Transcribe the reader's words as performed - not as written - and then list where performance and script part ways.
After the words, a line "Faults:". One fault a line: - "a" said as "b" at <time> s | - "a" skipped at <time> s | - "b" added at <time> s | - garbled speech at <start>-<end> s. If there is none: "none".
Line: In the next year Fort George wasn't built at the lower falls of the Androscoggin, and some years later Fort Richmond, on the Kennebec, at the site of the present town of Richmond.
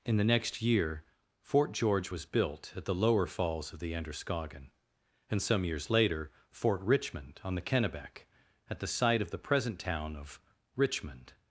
In the next year Fort George was built at the lower falls of the Androscoggin, and some years later Fort Richmond, on the Kennebec, at the site of the present town of Richmond.
Faults:
- "wasn't" said as "was" at 2.1 s